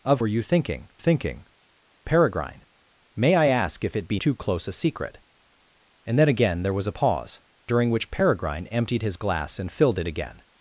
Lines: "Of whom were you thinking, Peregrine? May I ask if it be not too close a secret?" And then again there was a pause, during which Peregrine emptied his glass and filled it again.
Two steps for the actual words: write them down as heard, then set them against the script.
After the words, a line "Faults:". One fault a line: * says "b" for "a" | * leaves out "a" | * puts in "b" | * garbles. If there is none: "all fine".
"Of were you thinking thinking, Peregrine? May I ask if it be too close a secret?" And then again there was a pause, during which Peregrine emptied his glass and filled it again.
Faults:
* leaves out "whom"
* puts in "thinking"
* leaves out "not"